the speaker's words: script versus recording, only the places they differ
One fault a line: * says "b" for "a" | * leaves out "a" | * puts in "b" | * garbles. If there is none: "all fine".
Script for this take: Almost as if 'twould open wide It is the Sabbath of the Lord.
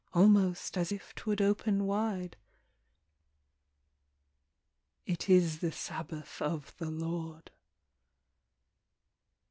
all fine